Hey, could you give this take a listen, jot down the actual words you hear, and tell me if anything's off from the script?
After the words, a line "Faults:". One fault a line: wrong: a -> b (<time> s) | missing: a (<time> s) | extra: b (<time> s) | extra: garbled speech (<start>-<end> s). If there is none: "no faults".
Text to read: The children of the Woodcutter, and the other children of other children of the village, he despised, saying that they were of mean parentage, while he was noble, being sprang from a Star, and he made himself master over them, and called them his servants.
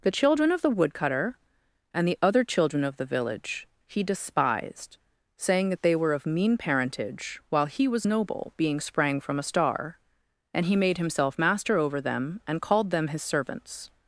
The children of the Woodcutter, and the other children of the village, he despised, saying that they were of mean parentage, while he was noble, being sprang from a Star, and he made himself master over them, and called them his servants.
Faults:
missing: other children of (3.0 s)